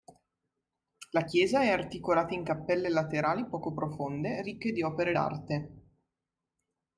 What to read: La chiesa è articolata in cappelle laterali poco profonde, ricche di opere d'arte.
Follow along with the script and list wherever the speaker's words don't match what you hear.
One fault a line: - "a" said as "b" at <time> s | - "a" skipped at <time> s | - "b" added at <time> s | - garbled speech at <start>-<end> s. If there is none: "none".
none